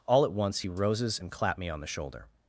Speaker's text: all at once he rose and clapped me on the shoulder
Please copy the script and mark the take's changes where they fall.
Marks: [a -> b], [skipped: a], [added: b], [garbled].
all at once he [rose -> roses] and clapped me on the shoulder